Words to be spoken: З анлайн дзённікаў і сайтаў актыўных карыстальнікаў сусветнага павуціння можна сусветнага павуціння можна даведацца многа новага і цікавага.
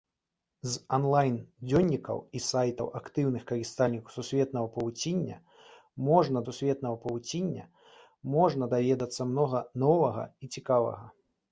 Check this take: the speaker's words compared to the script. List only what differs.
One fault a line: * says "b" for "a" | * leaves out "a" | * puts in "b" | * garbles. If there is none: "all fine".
all fine